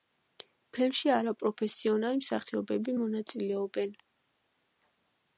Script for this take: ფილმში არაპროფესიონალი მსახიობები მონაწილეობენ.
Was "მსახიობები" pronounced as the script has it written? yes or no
yes